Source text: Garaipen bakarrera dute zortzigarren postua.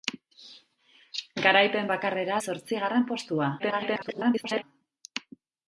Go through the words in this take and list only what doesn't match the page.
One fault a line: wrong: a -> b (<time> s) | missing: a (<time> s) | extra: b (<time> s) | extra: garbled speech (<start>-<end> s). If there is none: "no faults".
missing: dute (2.4 s)
extra: garbled speech (3.6-4.6 s)